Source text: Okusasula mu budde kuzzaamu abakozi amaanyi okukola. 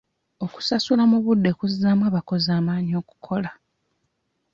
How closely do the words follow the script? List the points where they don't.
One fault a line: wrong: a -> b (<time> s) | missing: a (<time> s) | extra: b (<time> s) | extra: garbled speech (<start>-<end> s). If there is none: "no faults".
no faults